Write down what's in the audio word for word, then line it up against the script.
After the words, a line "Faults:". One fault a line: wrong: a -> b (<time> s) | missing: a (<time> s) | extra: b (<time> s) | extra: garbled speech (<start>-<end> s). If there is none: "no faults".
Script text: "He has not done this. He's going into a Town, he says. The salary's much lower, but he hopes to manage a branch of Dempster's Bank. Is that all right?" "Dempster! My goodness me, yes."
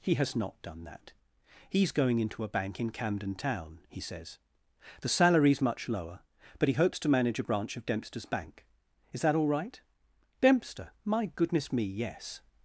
"He has not done that. He's going into a bank in Camden Town, he says. The salary's much lower, but he hopes to manage a branch of Dempster's Bank. Is that all right?" "Dempster! My goodness me, yes."
Faults:
wrong: this -> that (0.8 s)
extra: bank in Camden (2.5 s)